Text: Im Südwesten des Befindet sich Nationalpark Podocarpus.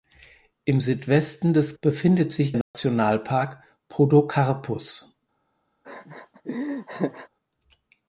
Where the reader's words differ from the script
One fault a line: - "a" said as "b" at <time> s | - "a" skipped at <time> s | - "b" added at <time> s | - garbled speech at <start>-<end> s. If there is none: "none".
none